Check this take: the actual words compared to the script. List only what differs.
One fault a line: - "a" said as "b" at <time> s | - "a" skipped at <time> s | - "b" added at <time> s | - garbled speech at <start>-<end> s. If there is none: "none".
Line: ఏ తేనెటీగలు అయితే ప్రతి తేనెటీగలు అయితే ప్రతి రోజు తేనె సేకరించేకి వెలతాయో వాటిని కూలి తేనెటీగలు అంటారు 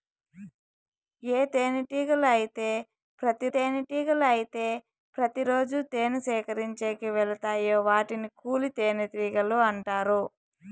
none